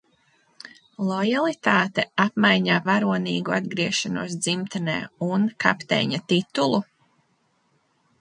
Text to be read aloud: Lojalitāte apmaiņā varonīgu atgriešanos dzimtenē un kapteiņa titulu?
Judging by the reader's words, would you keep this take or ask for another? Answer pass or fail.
pass